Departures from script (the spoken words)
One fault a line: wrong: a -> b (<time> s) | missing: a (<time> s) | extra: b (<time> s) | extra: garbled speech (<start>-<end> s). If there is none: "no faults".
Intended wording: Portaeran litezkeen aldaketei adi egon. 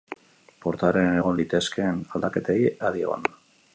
extra: egon (1.2 s)